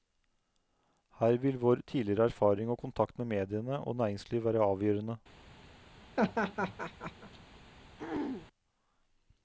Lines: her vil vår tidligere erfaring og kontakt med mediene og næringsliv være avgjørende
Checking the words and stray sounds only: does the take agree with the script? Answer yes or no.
no